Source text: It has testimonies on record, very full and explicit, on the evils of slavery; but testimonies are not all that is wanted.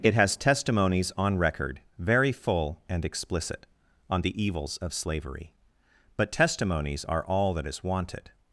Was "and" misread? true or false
false